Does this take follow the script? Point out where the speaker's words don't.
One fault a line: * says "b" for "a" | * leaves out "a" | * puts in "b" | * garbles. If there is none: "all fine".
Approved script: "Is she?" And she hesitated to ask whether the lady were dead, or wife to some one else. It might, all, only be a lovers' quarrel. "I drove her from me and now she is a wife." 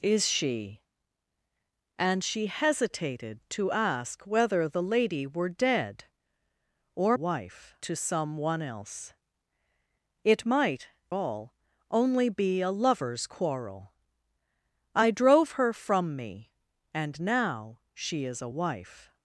all fine